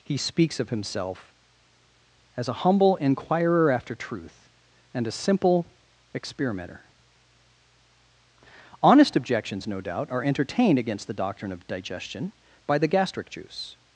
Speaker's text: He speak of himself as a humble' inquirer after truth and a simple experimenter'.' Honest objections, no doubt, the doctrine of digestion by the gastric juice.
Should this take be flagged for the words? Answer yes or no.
yes